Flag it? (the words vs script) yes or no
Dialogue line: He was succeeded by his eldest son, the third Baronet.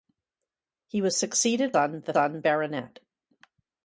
yes